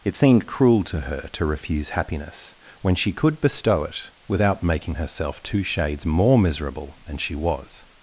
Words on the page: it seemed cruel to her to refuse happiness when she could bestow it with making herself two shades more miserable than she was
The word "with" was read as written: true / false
false